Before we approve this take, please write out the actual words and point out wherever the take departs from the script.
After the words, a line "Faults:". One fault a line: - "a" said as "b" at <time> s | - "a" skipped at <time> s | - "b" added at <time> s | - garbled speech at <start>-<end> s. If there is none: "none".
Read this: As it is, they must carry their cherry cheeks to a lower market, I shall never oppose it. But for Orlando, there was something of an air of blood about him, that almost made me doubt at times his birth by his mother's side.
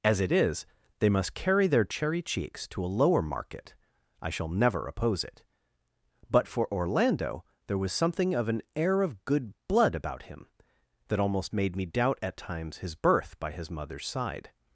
As it is, they must carry their cherry cheeks to a lower market, I shall never oppose it. But for Orlando, there was something of an air of good blood about him, that almost made me doubt at times his birth by his mother's side.
Faults:
- "good" added at 9.2 s